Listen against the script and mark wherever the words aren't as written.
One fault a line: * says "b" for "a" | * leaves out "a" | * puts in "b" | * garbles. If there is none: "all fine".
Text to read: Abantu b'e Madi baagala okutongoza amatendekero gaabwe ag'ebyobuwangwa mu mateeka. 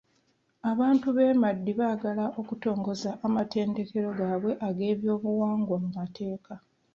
all fine